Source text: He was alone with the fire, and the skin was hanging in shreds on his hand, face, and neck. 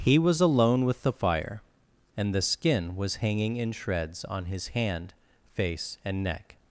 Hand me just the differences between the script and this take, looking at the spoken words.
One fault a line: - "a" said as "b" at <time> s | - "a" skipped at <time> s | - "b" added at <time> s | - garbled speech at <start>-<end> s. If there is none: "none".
none